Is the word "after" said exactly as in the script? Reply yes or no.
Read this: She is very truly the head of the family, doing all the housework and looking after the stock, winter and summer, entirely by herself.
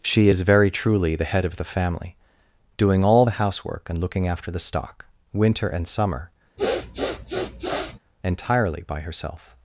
yes